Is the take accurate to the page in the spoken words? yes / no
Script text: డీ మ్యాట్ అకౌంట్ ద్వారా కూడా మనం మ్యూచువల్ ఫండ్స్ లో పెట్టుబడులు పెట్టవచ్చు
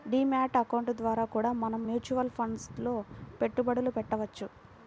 yes